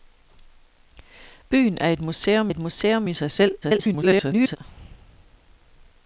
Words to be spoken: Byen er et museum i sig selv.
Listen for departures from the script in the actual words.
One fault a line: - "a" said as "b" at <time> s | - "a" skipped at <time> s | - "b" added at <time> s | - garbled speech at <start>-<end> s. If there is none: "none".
- "et museum" added at 2.5 s
- garbled speech at 3.6-4.6 s